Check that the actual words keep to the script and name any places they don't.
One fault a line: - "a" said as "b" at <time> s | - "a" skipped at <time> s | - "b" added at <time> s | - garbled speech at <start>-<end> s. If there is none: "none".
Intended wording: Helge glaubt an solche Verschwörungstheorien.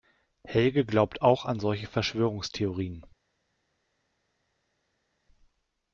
- "auch" added at 1.2 s